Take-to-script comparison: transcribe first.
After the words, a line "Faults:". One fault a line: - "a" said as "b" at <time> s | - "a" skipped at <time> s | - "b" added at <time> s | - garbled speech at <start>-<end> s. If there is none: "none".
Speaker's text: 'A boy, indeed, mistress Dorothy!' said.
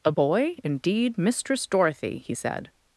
'A boy, indeed, mistress Dorothy!' he said.
Faults:
- "he" added at 2.2 s